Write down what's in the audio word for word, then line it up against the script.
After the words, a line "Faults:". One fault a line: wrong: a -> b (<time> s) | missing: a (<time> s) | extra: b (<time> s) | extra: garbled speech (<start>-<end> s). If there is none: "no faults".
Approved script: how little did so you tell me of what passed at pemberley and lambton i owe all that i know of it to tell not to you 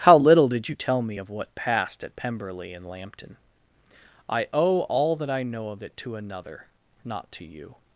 how little did you tell me of what passed at pemberley and lambton i owe all that i know of it to another not to you
Faults:
missing: so (0.7 s)
wrong: tell -> another (6.2 s)